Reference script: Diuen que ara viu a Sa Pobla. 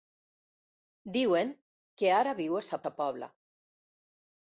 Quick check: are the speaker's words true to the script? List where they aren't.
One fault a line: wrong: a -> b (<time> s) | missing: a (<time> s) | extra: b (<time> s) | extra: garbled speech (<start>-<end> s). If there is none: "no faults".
extra: Sa (2.8 s)